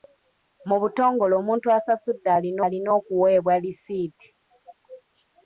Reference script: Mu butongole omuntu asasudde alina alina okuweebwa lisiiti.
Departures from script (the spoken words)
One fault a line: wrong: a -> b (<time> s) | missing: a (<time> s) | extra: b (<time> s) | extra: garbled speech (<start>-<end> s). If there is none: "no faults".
no faults